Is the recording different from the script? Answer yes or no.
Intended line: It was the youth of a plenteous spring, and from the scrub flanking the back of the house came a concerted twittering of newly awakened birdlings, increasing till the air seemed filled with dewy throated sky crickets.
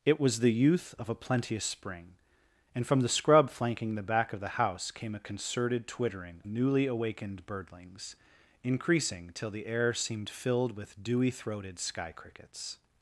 yes